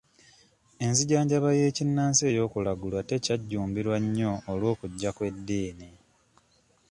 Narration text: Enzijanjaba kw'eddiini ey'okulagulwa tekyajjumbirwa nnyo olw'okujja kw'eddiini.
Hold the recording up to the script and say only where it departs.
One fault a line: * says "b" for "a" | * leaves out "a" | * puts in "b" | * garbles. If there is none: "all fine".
* says "y'ekinnansi" for "kw'eddiini"